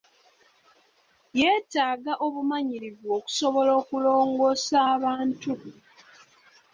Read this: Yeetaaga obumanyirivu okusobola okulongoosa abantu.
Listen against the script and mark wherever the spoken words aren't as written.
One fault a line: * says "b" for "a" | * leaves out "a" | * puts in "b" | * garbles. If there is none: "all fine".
all fine